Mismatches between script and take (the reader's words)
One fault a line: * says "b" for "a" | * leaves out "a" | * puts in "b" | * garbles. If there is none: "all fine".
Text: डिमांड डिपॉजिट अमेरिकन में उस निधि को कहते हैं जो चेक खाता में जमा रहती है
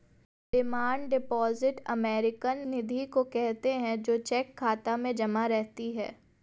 * leaves out "में उस"